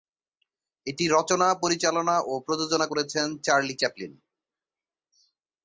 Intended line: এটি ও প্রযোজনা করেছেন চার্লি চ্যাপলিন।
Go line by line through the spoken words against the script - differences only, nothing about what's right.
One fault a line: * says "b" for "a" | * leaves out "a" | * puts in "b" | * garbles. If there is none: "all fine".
* puts in "রচনা পরিচালনা"